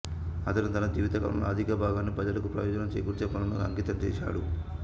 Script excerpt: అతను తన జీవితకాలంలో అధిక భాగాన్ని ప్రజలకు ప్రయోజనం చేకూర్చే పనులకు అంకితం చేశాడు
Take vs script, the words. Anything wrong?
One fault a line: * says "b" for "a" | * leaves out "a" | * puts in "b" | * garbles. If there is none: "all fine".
all fine